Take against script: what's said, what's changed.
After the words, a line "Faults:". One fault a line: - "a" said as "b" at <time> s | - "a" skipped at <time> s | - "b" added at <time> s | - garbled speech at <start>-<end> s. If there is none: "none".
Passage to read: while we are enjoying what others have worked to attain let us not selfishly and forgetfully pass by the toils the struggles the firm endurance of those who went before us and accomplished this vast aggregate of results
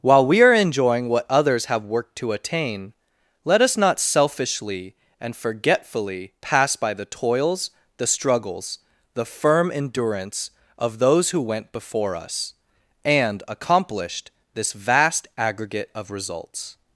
while we are enjoying what others have worked to attain let us not selfishly and forgetfully pass by the toils the struggles the firm endurance of those who went before us and accomplished this vast aggregate of results
Faults:
none